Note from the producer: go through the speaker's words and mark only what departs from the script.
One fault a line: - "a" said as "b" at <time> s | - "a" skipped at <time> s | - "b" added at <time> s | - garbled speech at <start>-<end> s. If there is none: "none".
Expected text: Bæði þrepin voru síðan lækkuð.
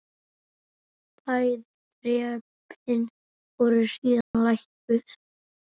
none